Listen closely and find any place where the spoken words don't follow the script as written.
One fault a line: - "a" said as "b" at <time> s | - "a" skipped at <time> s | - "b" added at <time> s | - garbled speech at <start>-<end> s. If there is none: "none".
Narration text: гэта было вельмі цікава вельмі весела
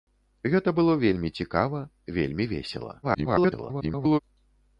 - garbled speech at 3.0-4.2 s